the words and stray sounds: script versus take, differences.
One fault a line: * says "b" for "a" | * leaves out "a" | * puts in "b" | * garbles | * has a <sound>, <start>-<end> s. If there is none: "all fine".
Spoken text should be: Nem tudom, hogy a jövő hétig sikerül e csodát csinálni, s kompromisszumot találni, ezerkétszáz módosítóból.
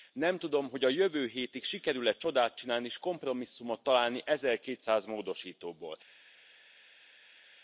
all fine